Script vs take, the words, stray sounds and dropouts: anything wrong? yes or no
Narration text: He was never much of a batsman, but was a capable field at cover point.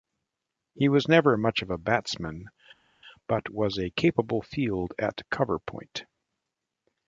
no